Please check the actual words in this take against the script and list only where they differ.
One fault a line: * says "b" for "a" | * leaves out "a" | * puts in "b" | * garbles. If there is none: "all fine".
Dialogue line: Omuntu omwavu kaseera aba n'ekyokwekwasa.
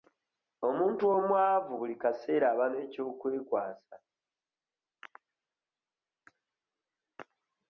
* puts in "buli"